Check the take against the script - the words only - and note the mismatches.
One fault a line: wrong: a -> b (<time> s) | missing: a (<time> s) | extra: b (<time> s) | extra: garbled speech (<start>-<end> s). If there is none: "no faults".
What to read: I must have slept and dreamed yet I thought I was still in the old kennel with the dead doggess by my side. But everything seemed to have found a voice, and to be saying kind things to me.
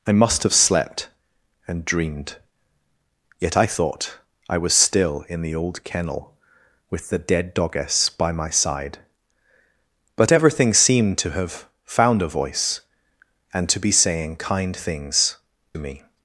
missing: to (15.4 s)